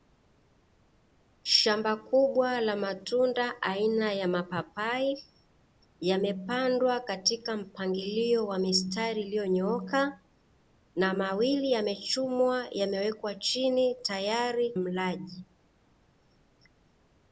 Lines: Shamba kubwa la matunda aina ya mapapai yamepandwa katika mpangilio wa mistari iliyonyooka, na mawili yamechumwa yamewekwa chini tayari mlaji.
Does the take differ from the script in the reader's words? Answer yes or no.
no